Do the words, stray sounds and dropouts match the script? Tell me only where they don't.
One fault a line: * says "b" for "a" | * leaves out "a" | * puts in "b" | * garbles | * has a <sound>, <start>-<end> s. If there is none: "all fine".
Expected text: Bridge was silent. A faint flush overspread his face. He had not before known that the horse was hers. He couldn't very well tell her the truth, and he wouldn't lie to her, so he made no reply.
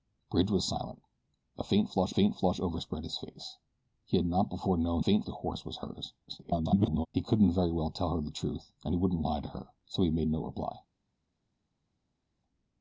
* puts in "faint flush"
* says "faint" for "that"
* garbles